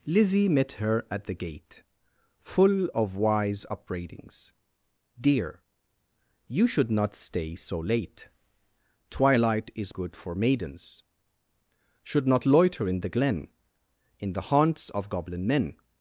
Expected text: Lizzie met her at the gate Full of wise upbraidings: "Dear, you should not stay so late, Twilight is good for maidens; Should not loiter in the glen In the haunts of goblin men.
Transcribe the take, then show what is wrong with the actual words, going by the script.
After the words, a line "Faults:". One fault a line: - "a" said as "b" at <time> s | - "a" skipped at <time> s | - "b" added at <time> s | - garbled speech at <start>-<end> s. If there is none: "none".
Lizzie met her at the gate Full of wise upbraidings: "Dear, you should not stay so late, Twilight is good for maidens; Should not loiter in the glen In the haunts of goblin men.
Faults:
none